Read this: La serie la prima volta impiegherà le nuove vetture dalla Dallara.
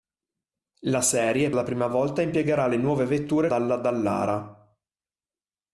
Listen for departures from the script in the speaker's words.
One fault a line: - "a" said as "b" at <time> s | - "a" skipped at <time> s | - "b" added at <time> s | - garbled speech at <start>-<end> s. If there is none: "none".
none